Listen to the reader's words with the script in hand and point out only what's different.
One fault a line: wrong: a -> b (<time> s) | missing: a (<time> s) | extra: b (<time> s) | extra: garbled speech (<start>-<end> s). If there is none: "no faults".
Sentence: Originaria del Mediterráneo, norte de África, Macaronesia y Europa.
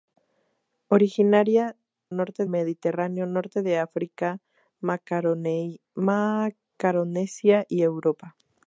wrong: del -> norte (2.1 s)